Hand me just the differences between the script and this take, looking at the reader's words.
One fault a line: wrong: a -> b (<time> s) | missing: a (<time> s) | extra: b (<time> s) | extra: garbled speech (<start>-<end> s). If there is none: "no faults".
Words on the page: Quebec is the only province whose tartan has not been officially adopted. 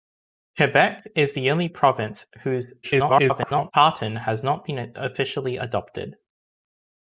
extra: garbled speech (2.8-3.7 s)